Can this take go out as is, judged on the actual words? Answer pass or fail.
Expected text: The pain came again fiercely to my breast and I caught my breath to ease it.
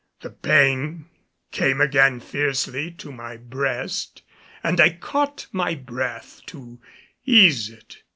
pass